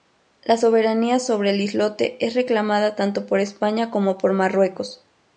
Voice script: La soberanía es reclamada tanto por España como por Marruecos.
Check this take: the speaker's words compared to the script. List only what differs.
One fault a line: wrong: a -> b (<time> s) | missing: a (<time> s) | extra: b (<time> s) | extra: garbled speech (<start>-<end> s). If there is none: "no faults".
extra: sobre el islote (1.2 s)